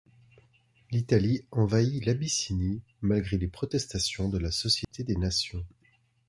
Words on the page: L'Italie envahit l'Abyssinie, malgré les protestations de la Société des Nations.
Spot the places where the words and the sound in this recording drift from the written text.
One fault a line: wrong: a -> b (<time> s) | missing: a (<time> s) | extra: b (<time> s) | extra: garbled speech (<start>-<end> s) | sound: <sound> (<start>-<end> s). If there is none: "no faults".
sound: dropout (4.8-4.9 s)